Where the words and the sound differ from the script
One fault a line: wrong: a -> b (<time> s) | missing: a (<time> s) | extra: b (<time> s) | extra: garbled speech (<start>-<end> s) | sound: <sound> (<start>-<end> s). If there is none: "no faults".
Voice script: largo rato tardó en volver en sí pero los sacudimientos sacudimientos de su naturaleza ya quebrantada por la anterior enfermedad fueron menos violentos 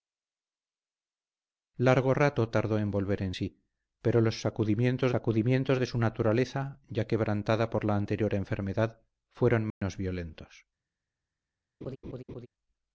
sound: dropout (9.7-9.8 s)
sound: laugh (11.8-12.5 s)